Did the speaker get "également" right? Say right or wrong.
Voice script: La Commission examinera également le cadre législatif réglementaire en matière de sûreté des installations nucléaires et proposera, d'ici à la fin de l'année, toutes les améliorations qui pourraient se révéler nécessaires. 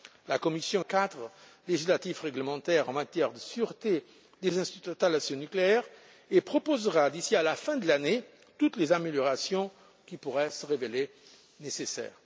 wrong